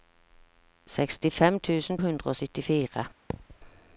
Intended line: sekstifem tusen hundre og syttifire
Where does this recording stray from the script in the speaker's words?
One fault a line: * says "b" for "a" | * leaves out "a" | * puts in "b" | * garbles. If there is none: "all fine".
all fine